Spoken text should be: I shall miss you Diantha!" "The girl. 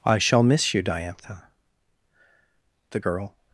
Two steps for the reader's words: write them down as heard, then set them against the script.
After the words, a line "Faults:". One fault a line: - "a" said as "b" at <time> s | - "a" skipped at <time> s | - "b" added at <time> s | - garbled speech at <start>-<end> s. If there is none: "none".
I shall miss you Diantha!" "The girl.
Faults:
none